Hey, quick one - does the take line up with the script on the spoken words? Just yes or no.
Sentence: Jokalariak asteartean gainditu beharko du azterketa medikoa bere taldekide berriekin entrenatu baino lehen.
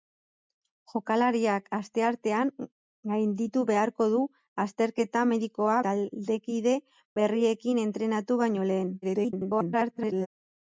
no